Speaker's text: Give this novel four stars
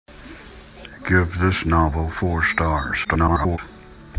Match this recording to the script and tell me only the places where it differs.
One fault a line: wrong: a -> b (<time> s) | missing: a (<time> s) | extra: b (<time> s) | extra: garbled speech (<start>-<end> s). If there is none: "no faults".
extra: garbled speech (3.0-3.6 s)